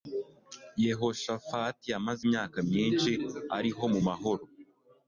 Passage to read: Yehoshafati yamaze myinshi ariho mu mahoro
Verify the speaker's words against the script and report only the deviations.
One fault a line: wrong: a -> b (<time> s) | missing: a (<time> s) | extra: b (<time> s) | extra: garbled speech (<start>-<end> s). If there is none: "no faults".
extra: imyaka (2.3 s)